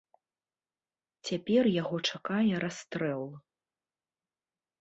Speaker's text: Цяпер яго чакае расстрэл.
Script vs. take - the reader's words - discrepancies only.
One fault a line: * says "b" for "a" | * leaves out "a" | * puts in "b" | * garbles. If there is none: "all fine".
all fine